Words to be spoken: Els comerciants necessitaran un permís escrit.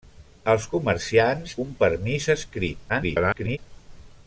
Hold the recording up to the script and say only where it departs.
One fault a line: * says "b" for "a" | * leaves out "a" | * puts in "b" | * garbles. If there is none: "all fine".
* leaves out "necessitaran"
* garbles